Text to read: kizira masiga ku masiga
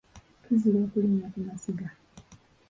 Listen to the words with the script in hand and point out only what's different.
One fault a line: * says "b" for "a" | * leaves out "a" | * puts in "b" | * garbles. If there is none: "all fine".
* says "okulinnya" for "masiga"